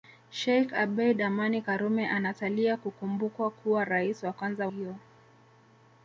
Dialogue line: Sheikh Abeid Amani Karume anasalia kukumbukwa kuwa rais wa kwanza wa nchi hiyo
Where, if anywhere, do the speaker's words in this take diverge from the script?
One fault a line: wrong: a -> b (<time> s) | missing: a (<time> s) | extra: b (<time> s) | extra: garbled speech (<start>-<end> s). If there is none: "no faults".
missing: wa nchi (4.7 s)